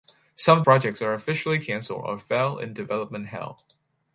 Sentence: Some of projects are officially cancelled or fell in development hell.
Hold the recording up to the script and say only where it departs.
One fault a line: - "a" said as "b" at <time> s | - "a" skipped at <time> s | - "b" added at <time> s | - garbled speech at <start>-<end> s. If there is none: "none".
none